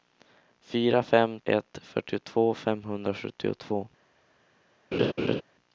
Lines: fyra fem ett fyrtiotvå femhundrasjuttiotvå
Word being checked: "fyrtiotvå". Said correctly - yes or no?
yes